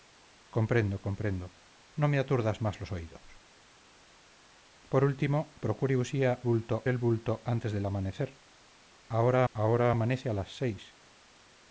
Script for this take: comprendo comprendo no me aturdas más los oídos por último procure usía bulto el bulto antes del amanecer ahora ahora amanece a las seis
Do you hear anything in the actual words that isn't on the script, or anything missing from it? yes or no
no